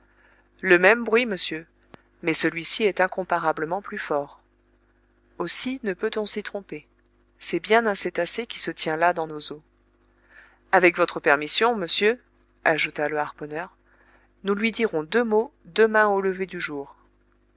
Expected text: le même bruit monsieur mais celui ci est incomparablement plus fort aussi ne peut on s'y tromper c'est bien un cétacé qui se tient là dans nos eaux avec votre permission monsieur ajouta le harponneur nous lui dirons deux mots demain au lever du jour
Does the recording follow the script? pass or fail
pass